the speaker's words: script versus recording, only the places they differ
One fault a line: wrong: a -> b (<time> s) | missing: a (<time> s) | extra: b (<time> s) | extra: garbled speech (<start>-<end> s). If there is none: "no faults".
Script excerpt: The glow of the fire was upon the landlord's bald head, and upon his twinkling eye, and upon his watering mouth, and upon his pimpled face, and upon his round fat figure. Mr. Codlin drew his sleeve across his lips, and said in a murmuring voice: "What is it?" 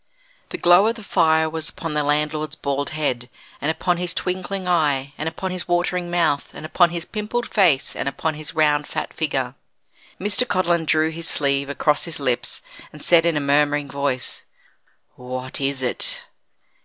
no faults